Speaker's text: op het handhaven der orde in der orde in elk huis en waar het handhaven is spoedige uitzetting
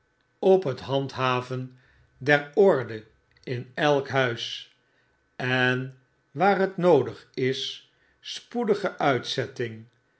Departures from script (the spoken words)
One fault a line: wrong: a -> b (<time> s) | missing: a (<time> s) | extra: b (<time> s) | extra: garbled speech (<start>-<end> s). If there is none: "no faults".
missing: der orde in (3.7 s)
wrong: handhaven -> noodig (6.8 s)